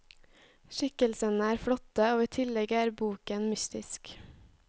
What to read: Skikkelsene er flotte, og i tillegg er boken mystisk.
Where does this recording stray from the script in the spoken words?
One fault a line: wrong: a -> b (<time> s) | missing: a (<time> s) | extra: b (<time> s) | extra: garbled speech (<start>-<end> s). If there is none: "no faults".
no faults